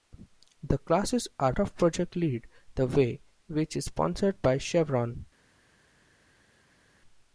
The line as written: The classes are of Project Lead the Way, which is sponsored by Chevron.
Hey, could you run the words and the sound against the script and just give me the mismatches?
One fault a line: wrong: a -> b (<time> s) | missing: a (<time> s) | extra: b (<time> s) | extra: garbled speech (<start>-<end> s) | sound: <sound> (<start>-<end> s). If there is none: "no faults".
no faults